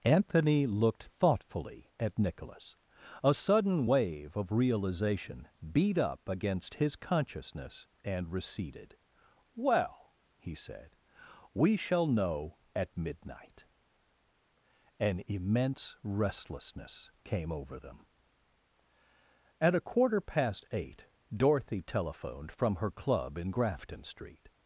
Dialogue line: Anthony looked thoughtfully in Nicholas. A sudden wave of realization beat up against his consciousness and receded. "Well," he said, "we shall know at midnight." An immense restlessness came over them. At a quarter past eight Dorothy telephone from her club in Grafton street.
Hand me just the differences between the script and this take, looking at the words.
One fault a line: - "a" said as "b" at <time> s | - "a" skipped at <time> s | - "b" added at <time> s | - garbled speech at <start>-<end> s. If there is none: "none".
- "in" said as "at" at 2.0 s
- "telephone" said as "telephoned" at 21.8 s